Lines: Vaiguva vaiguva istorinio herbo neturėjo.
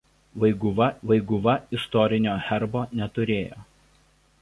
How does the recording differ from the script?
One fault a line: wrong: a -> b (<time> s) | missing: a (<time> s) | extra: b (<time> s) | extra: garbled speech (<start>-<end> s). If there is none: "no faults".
no faults